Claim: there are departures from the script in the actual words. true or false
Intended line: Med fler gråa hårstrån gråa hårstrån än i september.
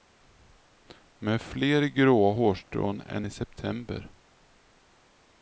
true